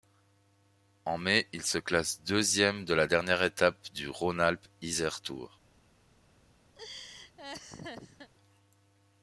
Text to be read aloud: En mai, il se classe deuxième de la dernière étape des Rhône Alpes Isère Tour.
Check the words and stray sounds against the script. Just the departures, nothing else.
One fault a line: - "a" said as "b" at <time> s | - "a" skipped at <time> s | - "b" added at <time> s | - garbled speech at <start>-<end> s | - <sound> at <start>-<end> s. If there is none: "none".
- "des" said as "du" at 3.9 s
- laugh at 6.8-8.3 s